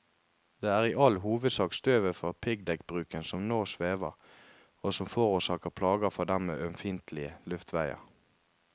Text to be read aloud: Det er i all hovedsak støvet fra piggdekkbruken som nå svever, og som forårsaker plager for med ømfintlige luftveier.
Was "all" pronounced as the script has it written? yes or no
yes